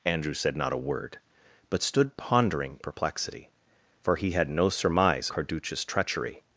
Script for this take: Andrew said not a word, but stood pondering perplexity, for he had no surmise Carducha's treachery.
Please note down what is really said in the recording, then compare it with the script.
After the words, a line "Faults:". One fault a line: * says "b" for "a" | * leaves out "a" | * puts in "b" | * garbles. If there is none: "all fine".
Andrew said not a word, but stood pondering perplexity, for he had no surmise Carducha's treachery.
Faults:
all fine